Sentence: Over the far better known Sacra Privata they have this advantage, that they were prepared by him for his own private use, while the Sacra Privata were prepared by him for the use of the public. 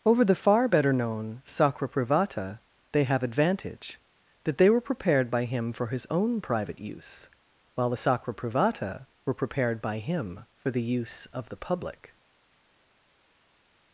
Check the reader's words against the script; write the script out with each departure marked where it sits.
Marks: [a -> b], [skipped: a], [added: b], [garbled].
Over the far better known Sacra Privata they have [skipped: this] advantage, that they were prepared by him for his own private use, while the Sacra Privata were prepared by him for the use of the public.